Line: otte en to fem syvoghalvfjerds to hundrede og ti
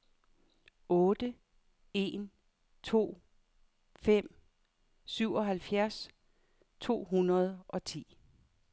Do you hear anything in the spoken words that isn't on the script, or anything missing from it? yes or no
no